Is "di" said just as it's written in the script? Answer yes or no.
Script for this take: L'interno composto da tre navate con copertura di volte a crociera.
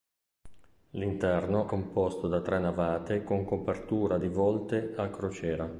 yes